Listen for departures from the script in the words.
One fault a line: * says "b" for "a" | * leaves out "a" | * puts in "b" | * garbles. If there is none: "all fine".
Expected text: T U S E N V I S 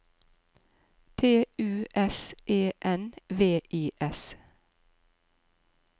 all fine